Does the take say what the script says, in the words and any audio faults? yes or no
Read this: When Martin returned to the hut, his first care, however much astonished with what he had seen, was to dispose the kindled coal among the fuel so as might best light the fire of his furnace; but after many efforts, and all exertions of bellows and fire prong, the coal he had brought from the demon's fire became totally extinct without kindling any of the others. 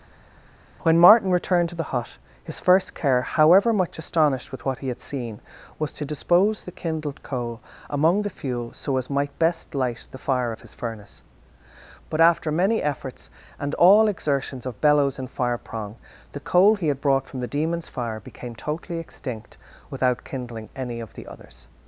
yes